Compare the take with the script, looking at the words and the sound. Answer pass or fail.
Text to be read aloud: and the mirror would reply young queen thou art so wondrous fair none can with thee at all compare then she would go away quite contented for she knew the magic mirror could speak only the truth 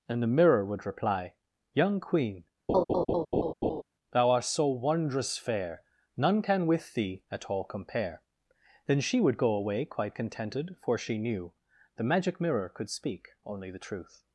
fail